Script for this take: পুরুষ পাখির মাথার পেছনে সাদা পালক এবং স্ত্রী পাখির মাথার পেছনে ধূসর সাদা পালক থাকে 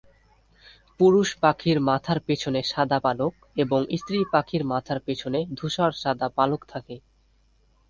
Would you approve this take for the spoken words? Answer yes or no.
yes